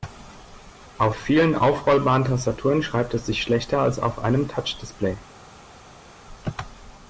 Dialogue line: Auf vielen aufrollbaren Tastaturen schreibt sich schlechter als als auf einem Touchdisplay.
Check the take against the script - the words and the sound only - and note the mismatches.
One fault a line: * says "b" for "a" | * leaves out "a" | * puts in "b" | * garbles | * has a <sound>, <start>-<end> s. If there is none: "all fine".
* puts in "es"
* leaves out "als"